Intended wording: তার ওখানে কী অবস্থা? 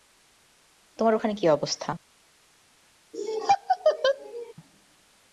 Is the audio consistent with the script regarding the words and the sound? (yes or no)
no